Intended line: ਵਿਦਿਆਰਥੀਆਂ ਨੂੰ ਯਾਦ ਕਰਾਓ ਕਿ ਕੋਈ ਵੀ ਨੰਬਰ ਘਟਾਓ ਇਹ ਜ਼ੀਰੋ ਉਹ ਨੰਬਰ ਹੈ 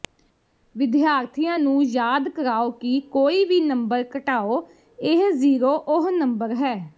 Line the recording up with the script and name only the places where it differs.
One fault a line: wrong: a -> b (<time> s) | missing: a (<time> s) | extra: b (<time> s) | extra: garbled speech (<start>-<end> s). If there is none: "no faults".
no faults